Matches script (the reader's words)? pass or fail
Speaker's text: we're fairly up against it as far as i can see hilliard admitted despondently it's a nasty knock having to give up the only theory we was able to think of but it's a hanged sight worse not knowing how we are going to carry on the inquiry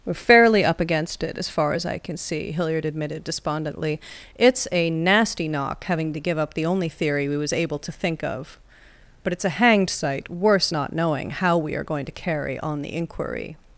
pass